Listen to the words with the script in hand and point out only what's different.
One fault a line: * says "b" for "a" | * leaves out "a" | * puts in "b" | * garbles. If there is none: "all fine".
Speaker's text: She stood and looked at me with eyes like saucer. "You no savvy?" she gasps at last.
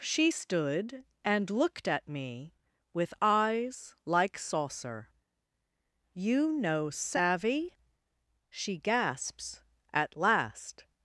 all fine